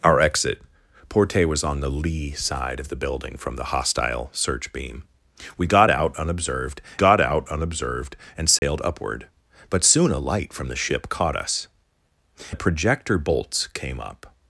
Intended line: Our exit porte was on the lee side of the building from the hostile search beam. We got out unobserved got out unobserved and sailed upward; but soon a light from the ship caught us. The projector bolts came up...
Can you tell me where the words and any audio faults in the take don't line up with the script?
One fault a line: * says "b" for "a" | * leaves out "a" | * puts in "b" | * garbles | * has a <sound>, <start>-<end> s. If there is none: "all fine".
* has a dropout, 8.6-8.6 s